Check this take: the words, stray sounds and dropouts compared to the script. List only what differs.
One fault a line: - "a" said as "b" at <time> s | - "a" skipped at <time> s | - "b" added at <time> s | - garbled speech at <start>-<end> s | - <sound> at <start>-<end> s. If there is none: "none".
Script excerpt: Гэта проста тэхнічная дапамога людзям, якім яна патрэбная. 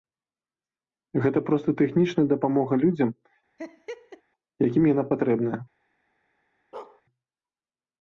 - laugh at 3.6-4.2 s
- bark at 6.7-7.0 s